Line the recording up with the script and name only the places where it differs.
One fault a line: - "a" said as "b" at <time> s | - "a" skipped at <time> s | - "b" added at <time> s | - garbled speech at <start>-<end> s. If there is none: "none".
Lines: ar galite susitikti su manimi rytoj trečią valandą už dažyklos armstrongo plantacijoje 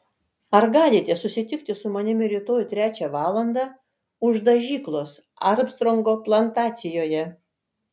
none